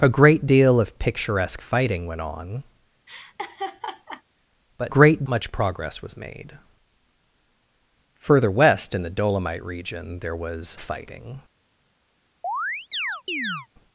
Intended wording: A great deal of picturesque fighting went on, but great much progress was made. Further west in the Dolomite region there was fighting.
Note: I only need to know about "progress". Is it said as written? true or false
true